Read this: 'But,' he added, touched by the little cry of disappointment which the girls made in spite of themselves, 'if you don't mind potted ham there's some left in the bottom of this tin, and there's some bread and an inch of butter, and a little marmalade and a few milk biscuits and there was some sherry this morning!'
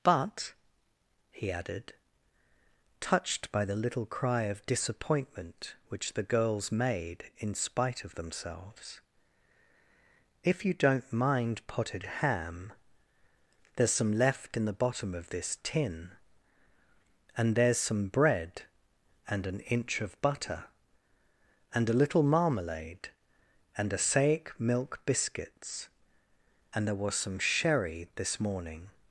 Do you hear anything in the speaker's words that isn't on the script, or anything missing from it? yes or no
yes